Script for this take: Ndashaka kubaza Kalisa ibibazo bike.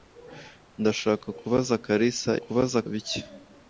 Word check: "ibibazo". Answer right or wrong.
wrong